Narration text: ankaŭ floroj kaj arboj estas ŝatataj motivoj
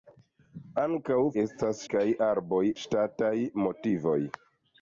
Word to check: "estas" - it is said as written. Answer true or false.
false